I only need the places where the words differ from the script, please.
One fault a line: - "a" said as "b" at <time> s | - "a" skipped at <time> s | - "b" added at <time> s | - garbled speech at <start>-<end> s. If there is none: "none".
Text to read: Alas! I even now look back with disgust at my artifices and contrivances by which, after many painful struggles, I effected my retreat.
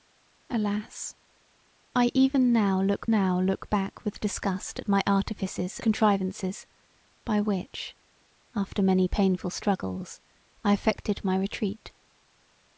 - "now look" added at 3.1 s
- "and" skipped at 5.8 s